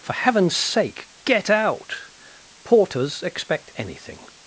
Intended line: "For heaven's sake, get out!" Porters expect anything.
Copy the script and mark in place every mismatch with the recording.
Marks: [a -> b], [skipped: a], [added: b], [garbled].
"For heaven's sake, get out!" Porters expect anything.